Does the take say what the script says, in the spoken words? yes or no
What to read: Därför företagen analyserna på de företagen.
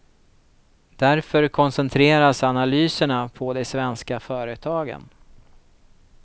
no